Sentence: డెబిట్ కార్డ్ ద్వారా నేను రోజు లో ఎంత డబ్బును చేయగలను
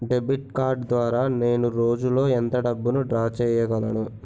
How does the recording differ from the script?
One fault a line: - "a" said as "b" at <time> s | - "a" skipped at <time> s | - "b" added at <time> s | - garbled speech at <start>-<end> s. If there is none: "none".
- "డ్రా" added at 3.0 s